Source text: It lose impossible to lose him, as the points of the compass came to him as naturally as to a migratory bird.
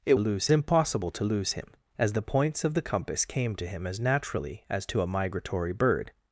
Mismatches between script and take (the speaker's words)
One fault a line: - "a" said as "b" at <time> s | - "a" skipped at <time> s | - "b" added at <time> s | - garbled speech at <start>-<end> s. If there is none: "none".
none